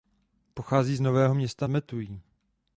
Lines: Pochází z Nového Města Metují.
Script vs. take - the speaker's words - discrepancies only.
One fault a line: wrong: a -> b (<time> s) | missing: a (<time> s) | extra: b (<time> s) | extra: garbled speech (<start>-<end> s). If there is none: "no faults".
no faults